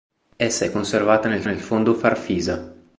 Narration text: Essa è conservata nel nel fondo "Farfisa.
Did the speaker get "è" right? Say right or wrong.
right